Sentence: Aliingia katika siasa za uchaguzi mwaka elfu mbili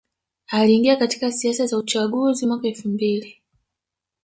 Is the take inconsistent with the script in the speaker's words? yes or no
no